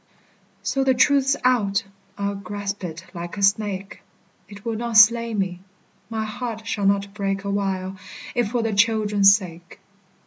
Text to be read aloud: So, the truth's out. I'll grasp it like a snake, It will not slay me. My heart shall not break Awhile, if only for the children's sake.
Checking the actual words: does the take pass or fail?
fail